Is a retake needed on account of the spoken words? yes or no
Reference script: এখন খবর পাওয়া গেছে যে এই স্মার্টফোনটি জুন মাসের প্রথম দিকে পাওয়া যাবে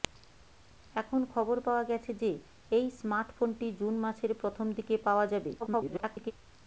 yes